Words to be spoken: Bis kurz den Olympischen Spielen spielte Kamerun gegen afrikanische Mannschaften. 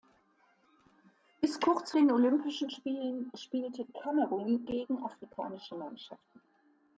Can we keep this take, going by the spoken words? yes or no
yes